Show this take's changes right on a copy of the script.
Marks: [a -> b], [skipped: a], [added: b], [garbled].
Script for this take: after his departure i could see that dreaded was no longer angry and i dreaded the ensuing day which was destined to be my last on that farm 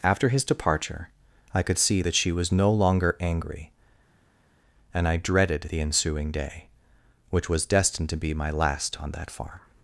after his departure i could see that [dreaded -> she] was no longer angry and i dreaded the ensuing day which was destined to be my last on that farm